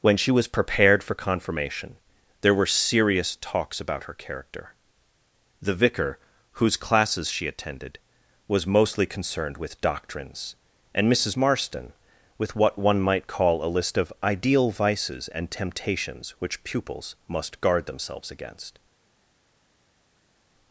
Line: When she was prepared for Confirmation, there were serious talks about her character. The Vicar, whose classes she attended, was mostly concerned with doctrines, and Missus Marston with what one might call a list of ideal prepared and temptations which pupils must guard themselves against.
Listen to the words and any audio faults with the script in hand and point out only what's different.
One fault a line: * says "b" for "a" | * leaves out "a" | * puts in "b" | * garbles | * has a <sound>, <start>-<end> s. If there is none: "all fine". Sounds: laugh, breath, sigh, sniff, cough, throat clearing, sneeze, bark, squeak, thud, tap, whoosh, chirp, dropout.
* says "vices" for "prepared"